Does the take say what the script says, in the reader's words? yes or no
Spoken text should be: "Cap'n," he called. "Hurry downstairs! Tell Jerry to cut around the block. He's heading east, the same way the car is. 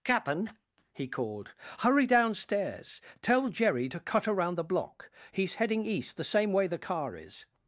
yes